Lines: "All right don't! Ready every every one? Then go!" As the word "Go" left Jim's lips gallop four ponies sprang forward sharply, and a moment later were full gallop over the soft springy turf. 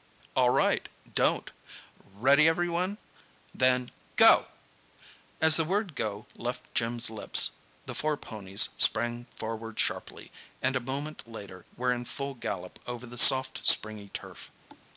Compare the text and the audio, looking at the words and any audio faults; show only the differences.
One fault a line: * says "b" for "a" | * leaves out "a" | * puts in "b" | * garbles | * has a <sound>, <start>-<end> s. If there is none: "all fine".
* leaves out "every"
* says "the" for "gallop"
* puts in "in"
* has a thud, 14.7-14.9 s